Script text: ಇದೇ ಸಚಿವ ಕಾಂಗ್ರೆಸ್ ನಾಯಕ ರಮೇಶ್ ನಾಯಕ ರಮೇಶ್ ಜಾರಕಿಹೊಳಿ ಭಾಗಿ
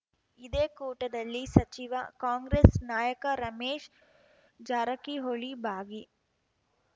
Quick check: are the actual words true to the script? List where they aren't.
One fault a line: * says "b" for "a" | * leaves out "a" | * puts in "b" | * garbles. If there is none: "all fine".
* puts in "ಕೂಟದಲ್ಲಿ"
* leaves out "ನಾಯಕ ರಮೇಶ್"